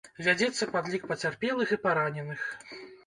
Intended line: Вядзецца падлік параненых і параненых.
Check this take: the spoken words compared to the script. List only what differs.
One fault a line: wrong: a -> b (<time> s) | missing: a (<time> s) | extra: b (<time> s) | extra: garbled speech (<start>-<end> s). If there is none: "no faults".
wrong: параненых -> пацярпелых (1.1 s)